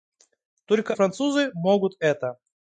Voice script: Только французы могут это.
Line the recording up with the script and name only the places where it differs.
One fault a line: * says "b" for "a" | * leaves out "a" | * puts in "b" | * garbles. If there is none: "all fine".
all fine